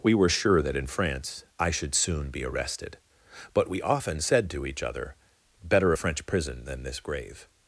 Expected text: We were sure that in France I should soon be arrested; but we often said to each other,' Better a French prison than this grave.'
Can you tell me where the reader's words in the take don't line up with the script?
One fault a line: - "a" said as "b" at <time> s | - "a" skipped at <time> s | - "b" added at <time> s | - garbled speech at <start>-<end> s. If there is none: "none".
none